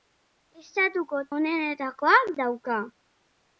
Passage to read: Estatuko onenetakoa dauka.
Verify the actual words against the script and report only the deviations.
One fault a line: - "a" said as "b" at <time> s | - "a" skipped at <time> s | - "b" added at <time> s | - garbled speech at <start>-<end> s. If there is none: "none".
none